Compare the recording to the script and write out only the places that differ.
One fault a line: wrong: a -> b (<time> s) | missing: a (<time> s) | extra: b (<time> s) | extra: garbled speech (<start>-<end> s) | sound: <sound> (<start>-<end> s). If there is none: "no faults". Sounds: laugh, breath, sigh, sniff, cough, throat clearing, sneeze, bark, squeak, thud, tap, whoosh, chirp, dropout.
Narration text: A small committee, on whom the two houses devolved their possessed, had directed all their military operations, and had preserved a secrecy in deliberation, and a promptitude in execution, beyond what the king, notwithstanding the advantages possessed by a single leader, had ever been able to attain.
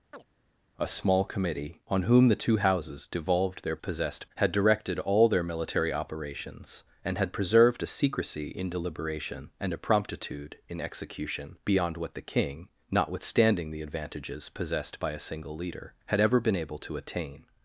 sound: chirp (0.1-0.2 s)